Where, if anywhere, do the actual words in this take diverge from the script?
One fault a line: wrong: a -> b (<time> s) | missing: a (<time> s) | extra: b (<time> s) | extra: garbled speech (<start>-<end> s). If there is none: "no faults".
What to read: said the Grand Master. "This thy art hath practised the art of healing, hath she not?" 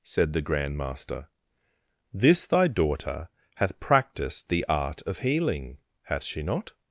wrong: art -> daughter (2.7 s)